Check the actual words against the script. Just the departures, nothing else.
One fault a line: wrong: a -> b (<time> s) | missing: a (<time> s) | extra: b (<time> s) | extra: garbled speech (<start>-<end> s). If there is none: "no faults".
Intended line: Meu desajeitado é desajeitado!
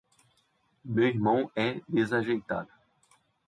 wrong: desajeitado -> irmão (1.1 s)